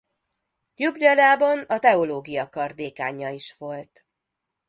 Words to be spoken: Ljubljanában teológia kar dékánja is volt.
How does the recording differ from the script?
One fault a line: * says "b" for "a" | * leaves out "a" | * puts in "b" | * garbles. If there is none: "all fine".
* puts in "a"